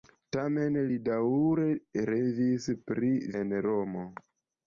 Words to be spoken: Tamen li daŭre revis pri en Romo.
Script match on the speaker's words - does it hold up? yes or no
yes